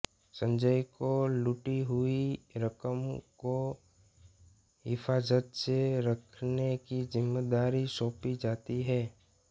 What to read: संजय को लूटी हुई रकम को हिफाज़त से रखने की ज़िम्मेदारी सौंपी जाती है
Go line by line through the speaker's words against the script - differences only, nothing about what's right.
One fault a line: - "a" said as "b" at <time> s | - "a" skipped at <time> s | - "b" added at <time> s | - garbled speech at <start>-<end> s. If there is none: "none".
none